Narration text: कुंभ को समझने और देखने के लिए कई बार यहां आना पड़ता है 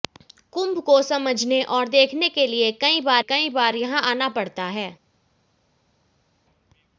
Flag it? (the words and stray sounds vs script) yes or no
yes